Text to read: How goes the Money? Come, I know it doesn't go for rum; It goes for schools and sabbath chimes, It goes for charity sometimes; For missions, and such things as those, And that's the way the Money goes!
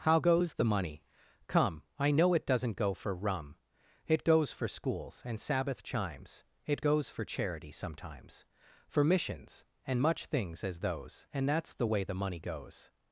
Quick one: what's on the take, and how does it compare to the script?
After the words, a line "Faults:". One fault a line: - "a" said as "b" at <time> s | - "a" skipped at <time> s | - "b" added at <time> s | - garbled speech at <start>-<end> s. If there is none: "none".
How goes the Money? Come, I know it doesn't go for rum; It goes for schools and sabbath chimes, It goes for charity sometimes; For missions, and much things as those, And that's the way the Money goes!
Faults:
- "such" said as "much" at 10.0 s